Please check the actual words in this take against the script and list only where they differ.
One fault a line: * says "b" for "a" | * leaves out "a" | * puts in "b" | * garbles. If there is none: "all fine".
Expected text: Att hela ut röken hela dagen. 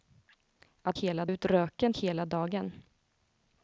all fine